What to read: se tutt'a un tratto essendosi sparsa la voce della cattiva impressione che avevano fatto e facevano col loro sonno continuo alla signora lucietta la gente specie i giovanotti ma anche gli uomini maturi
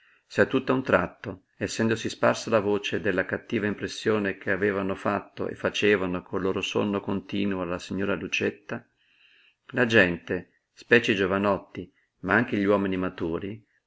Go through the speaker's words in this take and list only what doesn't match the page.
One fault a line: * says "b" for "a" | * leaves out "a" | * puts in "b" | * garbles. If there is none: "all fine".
all fine